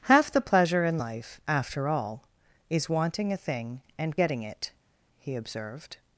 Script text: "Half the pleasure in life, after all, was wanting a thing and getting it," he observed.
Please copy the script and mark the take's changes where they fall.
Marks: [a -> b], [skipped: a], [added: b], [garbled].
"Half the pleasure in life, after all, [was -> is] wanting a thing and getting it," he observed.